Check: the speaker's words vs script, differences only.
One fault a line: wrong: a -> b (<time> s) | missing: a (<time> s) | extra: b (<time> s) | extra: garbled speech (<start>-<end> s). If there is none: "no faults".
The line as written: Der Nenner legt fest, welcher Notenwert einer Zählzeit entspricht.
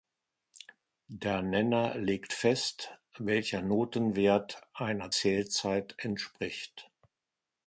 no faults